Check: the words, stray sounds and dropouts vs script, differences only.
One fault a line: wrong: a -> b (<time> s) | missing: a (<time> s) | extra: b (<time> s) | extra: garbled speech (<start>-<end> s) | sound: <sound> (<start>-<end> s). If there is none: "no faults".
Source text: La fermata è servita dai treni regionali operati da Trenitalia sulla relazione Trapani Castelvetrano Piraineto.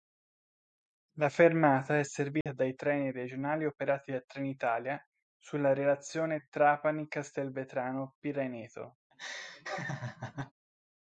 sound: dropout (2.4-2.5 s)
sound: laugh (9.1-10.5 s)